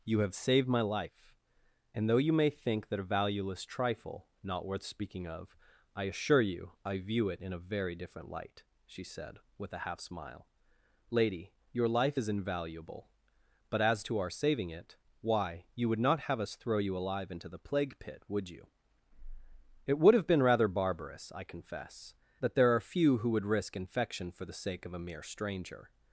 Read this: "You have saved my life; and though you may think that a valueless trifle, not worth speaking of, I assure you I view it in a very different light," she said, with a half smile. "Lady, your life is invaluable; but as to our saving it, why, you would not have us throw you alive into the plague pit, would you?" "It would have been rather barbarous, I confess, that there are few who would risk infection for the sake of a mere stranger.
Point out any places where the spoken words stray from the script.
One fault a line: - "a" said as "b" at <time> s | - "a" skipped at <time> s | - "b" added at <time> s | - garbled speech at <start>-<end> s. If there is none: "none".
none